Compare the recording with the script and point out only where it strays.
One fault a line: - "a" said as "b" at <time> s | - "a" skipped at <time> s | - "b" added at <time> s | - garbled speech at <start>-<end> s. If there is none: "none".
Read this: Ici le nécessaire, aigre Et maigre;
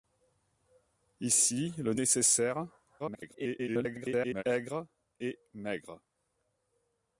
- garbled speech at 3.0-4.4 s